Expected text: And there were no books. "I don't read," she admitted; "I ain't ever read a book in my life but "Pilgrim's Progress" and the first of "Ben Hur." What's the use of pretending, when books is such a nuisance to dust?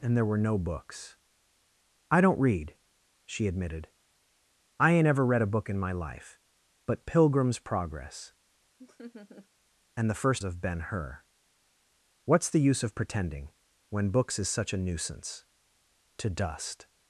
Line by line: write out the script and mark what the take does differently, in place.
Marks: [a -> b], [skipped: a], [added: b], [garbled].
And there were no books. "I don't read," she admitted; "I ain't ever read a book in my life but "Pilgrim's Progress" and the first of "Ben Hur." What's the use of pretending, when books is such a nuisance to dust?